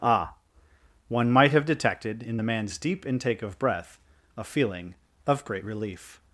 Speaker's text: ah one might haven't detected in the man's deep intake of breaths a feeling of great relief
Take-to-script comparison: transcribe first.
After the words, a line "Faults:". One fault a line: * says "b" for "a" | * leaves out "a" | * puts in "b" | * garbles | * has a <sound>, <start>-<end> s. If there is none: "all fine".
ah one might have detected in the man's deep intake of breath a feeling of great relief
Faults:
* says "have" for "haven't"
* says "breath" for "breaths"